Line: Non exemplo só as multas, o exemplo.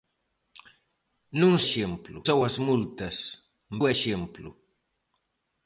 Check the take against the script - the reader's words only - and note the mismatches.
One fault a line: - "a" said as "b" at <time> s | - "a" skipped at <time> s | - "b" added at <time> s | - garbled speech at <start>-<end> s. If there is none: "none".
none